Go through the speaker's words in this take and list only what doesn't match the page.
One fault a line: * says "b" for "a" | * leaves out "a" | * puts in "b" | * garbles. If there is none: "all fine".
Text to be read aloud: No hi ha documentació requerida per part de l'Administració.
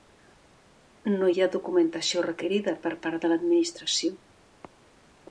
all fine